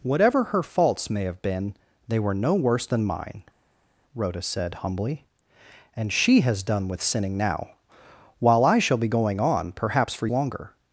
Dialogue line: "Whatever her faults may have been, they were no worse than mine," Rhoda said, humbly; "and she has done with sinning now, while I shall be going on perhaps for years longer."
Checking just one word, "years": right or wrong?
wrong